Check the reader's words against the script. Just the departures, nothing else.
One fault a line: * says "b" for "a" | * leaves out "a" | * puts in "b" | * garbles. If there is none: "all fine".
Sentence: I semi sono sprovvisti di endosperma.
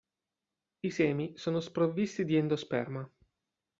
all fine